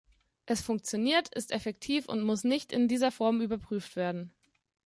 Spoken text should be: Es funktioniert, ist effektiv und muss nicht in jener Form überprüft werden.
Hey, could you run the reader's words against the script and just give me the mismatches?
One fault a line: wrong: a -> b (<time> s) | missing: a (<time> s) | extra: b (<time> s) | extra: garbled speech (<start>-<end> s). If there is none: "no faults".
wrong: jener -> dieser (2.9 s)